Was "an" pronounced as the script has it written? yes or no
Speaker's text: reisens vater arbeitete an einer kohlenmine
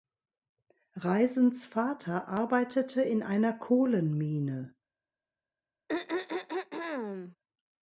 no